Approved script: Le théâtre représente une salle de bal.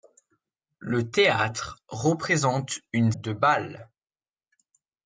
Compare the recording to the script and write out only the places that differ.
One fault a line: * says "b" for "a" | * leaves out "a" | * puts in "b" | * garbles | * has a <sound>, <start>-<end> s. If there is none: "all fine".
* leaves out "salle"